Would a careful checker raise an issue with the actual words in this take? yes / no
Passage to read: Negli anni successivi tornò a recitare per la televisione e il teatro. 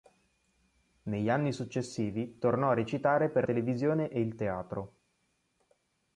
yes